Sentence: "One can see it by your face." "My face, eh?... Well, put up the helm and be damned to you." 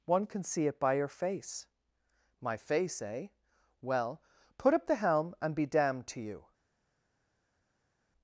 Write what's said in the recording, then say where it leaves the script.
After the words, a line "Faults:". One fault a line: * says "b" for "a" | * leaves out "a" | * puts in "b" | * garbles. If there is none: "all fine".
"One can see it by your face." "My face, eh?... Well, put up the helm and be damned to you."
Faults:
all fine